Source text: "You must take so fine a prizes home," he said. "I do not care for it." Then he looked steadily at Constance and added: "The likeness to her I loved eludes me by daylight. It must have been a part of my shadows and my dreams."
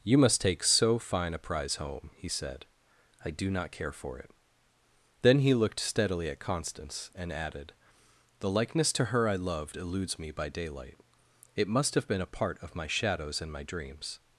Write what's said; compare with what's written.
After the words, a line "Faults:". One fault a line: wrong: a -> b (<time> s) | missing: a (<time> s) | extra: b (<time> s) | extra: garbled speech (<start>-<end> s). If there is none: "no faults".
"You must take so fine a prize home," he said. "I do not care for it." Then he looked steadily at Constance and added: "The likeness to her I loved eludes me by daylight. It must have been a part of my shadows and my dreams."
Faults:
wrong: prizes -> prize (1.4 s)